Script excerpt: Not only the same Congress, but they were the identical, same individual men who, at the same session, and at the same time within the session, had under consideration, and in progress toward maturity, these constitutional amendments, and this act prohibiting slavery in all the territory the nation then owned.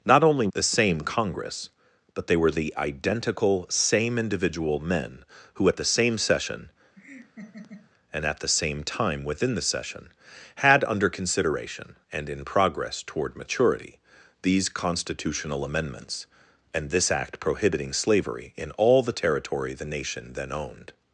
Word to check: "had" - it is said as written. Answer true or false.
true